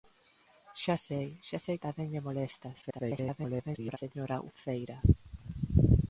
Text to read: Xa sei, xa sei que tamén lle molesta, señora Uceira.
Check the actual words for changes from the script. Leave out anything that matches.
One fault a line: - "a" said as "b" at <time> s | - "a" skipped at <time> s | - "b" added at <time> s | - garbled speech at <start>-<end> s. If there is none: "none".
- "que" skipped at 1.8 s
- garbled speech at 2.8-4.0 s